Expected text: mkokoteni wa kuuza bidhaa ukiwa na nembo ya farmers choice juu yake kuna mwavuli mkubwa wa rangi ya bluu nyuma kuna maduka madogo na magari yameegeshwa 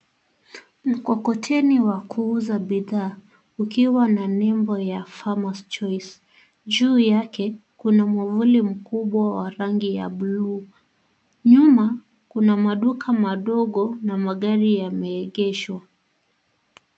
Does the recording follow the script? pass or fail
pass